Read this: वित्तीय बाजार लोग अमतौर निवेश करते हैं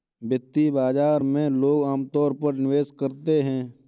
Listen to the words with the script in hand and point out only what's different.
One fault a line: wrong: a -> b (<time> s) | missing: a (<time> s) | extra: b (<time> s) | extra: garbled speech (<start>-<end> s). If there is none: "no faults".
extra: में (1.2 s)
extra: पर (2.3 s)